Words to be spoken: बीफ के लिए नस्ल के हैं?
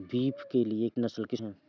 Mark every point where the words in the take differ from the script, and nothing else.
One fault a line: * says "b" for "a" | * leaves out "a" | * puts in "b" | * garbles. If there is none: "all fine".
all fine